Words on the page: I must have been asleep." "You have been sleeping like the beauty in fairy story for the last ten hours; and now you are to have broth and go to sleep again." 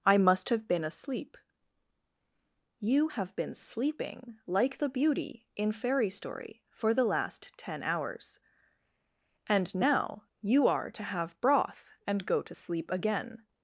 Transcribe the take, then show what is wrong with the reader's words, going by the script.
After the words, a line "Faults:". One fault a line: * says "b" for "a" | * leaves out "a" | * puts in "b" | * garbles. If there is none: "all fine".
I must have been asleep." "You have been sleeping like the beauty in fairy story for the last ten hours; and now you are to have broth and go to sleep again."
Faults:
all fine